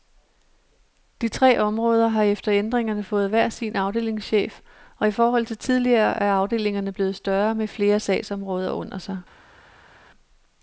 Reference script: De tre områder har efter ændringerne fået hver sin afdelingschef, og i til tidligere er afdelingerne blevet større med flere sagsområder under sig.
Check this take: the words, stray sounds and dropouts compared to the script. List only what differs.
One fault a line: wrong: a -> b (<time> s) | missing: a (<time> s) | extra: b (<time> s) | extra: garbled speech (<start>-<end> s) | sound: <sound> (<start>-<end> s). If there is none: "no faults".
extra: forhold (5.1 s)